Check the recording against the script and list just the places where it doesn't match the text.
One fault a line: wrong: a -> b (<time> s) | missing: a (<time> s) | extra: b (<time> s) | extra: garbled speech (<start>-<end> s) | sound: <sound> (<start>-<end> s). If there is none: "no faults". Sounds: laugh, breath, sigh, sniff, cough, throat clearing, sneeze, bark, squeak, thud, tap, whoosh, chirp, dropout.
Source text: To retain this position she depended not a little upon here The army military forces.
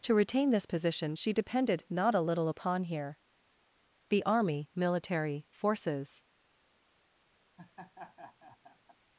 sound: laugh (7.6-9.0 s)